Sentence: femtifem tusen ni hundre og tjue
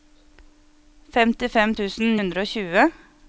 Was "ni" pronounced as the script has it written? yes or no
no